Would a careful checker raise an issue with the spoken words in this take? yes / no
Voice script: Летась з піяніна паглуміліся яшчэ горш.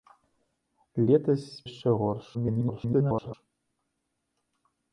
yes